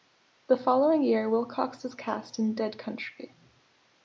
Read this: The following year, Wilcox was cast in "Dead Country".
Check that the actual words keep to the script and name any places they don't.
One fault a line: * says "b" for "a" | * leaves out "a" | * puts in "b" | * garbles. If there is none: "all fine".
all fine